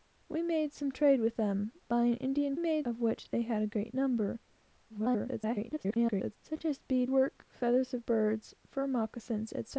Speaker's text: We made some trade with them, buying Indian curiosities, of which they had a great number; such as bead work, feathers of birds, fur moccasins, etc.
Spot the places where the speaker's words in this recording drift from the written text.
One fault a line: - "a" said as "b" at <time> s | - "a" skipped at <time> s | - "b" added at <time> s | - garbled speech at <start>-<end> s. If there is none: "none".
- "curiosities" said as "made" at 2.6 s
- garbled speech at 4.9-6.4 s